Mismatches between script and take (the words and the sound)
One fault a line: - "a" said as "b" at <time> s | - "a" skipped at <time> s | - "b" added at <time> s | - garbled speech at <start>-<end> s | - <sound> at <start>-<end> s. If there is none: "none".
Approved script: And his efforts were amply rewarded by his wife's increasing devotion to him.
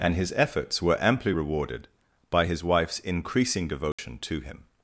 - dropout at 3.9-4.0 s